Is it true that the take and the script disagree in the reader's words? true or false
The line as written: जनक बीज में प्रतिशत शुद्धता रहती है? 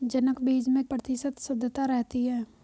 false